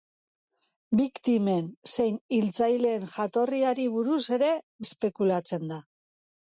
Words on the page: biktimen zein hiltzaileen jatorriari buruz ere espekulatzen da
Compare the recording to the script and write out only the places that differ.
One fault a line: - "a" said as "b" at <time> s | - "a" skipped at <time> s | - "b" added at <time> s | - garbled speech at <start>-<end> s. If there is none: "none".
none